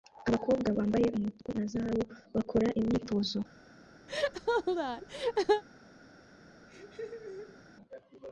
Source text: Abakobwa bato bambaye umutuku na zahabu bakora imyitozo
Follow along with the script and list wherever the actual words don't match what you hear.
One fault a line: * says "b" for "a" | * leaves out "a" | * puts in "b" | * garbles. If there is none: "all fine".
* leaves out "bato"